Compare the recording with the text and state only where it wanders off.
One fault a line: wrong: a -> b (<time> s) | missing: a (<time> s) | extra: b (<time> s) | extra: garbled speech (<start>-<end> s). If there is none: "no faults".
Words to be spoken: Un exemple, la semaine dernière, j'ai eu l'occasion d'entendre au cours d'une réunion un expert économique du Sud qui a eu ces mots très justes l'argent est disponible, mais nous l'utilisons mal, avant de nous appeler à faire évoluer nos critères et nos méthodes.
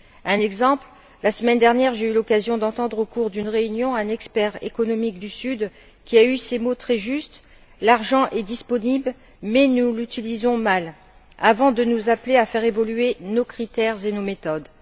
no faults